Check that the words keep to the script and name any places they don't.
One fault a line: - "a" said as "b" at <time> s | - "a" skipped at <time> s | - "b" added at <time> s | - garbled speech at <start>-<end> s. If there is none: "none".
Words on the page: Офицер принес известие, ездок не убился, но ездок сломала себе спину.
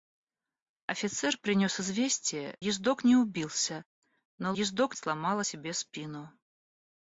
none